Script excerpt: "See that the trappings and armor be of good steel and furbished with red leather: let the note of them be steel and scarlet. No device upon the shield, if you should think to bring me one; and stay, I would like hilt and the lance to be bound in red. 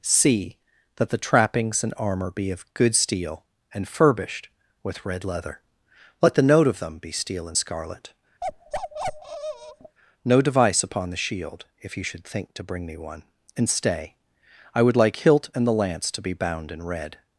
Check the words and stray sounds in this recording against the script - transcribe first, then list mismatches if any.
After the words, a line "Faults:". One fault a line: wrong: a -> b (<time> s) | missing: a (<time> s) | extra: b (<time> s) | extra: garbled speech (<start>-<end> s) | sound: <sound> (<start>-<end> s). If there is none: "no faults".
"See that the trappings and armor be of good steel and furbished with red leather: let the note of them be steel and scarlet. No device upon the shield, if you should think to bring me one; and stay, I would like hilt and the lance to be bound in red.
Faults:
sound: bark (8.4-10.0 s)